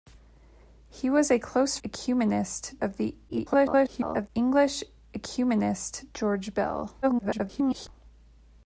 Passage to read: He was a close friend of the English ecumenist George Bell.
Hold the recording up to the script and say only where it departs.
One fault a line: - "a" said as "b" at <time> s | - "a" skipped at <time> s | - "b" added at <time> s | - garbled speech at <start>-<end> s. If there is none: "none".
- "friend" said as "ecumenist" at 1.8 s
- garbled speech at 3.3-4.3 s
- garbled speech at 7.0-7.9 s